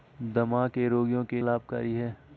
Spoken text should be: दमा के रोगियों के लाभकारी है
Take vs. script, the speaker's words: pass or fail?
pass